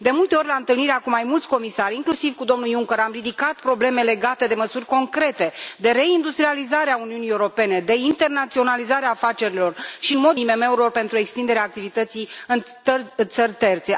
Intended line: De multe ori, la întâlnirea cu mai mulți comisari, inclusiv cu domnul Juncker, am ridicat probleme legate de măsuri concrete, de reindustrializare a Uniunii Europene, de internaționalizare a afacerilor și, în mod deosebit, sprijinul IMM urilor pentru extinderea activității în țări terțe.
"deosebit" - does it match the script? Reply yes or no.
no